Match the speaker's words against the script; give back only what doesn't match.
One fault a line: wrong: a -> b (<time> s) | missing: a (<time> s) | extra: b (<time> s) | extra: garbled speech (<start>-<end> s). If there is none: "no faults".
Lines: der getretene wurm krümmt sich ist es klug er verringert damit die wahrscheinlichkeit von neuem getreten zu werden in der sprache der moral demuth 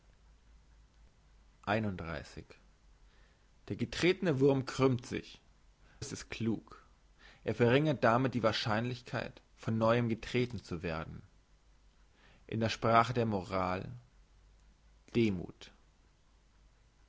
no faults